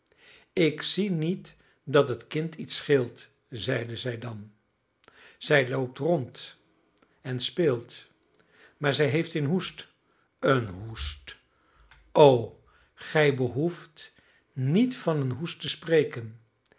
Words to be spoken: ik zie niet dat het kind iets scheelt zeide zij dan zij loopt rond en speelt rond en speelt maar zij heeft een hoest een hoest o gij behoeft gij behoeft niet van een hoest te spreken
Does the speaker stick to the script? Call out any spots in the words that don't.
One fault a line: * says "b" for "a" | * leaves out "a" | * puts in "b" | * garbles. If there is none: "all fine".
* leaves out "rond en speelt"
* leaves out "gij behoeft"